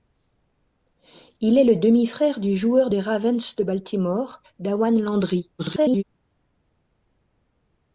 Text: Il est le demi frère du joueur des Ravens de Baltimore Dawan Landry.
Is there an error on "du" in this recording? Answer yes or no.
no